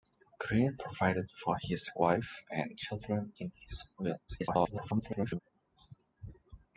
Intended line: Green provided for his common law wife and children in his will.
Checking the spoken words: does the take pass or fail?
fail